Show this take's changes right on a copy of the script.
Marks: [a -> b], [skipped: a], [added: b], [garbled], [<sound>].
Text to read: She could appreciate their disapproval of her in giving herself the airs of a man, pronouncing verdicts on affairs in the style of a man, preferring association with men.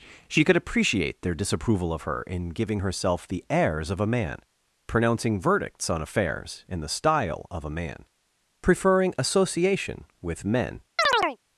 She could appreciate their disapproval of her in giving herself the airs of a man, pronouncing verdicts on affairs in the style of a man, preferring association with men. [chirp]